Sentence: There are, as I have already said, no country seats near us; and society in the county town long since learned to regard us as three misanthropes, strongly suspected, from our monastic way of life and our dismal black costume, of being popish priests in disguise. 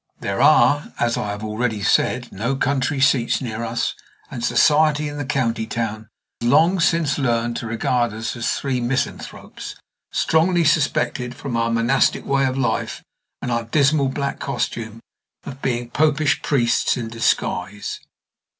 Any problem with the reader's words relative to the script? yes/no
no